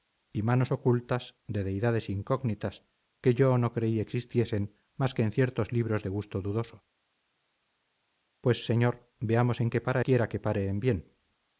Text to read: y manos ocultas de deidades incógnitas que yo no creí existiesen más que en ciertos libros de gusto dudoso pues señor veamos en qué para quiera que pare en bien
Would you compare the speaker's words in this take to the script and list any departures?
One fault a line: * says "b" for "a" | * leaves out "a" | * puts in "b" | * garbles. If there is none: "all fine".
all fine